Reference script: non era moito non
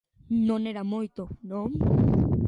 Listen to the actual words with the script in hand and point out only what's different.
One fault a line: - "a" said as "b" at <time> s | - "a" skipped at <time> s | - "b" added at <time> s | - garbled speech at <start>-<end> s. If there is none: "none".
none